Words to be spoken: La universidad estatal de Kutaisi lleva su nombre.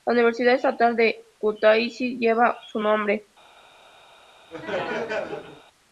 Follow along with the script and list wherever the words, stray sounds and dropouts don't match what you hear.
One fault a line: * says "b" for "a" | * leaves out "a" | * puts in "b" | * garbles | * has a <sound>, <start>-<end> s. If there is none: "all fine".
* has a laugh, 4.5-5.6 s